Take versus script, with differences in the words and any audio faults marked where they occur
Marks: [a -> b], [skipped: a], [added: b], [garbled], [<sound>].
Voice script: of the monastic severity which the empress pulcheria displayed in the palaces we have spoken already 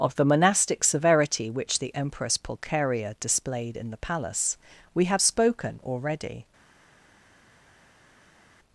of the monastic severity which the empress pulcheria displayed in the [palaces -> palace] we have spoken already